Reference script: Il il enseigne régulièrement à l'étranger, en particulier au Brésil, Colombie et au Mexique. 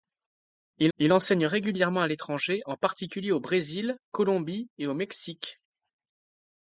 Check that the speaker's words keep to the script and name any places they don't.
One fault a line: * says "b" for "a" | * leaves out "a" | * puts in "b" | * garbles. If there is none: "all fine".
all fine